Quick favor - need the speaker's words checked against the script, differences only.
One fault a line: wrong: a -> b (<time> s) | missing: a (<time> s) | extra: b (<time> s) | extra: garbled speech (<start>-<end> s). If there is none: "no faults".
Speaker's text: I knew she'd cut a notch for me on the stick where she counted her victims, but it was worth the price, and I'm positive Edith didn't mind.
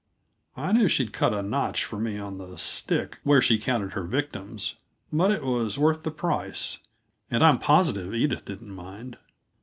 no faults